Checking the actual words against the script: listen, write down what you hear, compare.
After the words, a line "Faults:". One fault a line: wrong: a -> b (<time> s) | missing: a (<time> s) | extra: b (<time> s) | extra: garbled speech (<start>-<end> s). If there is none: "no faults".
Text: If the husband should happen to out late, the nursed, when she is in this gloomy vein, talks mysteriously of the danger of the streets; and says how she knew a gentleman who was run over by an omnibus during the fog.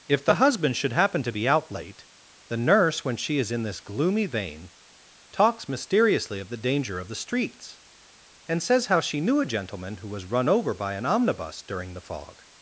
If the husband should happen to be out late, the nurse, when she is in this gloomy vein, talks mysteriously of the danger of the streets; and says how she knew a gentleman who was run over by an omnibus during the fog.
Faults:
extra: be (1.3 s)
wrong: nursed -> nurse (2.6 s)